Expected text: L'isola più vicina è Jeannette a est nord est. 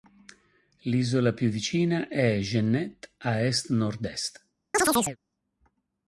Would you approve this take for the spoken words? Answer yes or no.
yes